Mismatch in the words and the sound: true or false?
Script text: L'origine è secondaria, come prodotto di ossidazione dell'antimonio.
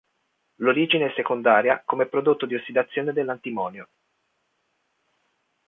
false